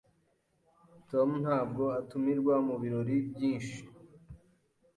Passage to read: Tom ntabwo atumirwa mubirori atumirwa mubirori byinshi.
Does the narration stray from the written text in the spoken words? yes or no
yes